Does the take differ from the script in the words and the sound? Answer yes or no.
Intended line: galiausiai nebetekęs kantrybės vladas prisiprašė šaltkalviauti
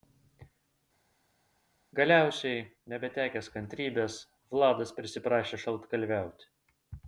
no